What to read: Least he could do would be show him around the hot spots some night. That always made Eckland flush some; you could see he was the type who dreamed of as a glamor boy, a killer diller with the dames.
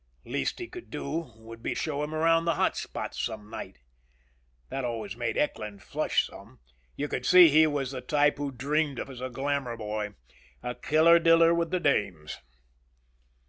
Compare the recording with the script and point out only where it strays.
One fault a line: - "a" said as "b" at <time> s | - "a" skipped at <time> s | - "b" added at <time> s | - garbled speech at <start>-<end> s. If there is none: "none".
none